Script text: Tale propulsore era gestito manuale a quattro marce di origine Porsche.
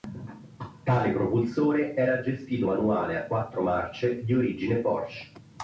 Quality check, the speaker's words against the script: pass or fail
pass